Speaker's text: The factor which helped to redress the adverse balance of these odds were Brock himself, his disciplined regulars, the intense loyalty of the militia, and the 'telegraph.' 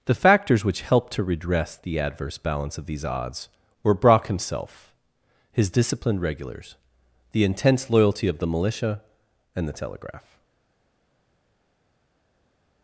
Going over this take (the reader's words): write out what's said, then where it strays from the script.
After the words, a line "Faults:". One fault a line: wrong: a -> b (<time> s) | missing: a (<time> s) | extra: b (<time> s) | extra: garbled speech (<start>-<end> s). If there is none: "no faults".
The factors which helped to redress the adverse balance of these odds were Brock himself, his disciplined regulars, the intense loyalty of the militia, and the 'telegraph.'
Faults:
wrong: factor -> factors (0.1 s)